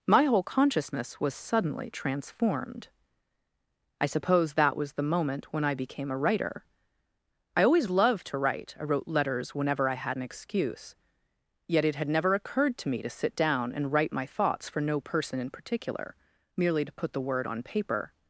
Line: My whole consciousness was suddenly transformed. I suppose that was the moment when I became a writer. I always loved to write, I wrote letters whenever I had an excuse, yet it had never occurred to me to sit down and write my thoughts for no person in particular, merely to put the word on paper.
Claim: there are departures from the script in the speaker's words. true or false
false